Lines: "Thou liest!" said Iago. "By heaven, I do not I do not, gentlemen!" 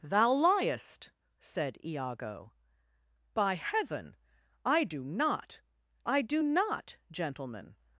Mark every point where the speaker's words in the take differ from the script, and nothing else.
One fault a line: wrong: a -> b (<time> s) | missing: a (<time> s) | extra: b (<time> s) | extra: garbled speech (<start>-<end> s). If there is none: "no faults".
no faults